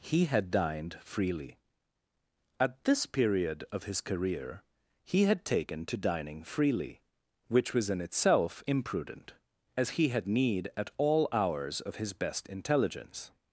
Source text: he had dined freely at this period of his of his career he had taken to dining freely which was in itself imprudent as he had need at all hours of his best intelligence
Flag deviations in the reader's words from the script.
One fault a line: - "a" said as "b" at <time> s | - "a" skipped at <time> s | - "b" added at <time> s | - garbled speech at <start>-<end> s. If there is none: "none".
- "of his" skipped at 4.0 s